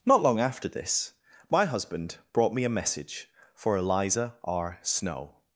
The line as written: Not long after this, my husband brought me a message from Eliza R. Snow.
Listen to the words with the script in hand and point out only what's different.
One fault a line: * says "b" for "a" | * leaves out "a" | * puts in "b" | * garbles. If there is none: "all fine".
* says "for" for "from"